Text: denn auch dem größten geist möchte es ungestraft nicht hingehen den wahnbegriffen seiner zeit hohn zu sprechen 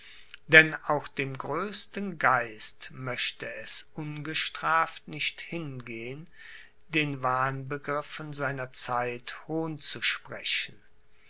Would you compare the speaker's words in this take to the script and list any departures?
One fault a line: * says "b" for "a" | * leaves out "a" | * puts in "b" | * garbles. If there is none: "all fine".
all fine